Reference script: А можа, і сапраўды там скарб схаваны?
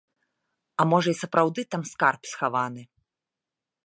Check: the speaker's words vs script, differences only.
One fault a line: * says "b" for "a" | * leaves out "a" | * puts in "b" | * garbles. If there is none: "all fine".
all fine